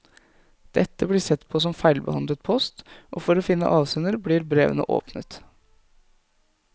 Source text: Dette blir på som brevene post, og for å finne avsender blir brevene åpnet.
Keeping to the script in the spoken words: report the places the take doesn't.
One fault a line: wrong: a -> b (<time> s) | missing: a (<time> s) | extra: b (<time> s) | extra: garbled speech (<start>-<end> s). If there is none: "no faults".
extra: sett (1.2 s)
wrong: brevene -> feilbehandlet (1.8 s)